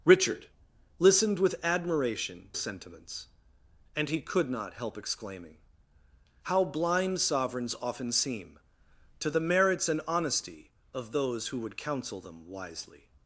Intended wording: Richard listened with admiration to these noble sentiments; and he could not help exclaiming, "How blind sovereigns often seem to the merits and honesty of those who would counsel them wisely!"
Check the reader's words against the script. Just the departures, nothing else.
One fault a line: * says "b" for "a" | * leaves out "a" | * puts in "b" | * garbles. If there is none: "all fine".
* leaves out "to these noble"